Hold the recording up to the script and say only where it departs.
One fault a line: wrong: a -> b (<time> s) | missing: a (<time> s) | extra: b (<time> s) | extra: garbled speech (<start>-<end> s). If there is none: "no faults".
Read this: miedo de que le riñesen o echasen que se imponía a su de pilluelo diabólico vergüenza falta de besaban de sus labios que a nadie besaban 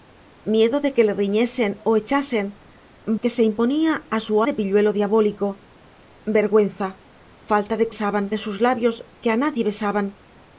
no faults